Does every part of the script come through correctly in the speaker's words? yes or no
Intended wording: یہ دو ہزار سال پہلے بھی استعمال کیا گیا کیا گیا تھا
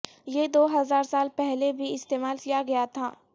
no